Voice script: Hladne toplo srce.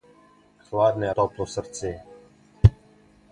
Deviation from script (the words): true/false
false